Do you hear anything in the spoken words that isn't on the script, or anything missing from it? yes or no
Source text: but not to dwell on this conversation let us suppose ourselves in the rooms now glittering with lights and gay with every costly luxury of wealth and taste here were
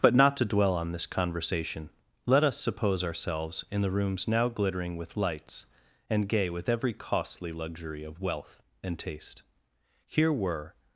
no